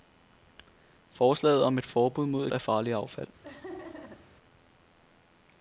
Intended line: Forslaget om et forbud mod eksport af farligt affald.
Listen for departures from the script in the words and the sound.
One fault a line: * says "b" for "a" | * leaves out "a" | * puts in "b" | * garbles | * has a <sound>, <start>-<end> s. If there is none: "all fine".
* leaves out "eksport"
* has a laugh, 3.4-4.3 s